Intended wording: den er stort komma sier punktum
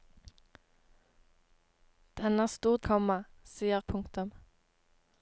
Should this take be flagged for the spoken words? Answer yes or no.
no